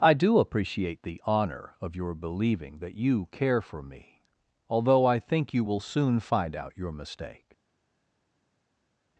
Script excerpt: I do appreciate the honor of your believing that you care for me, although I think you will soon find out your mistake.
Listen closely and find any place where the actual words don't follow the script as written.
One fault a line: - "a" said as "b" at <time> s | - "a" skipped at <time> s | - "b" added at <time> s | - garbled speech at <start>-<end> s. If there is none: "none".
none